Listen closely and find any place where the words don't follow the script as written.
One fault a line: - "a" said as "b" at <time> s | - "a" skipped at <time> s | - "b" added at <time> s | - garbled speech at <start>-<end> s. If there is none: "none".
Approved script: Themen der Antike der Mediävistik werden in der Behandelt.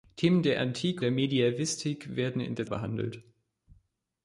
none